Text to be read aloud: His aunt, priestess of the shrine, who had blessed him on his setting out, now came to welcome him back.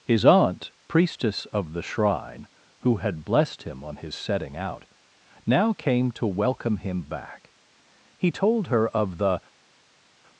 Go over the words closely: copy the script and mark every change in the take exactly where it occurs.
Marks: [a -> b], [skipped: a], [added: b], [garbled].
His aunt, priestess of the shrine, who had blessed him on his setting out, now came to welcome him back. [added: He told her of the]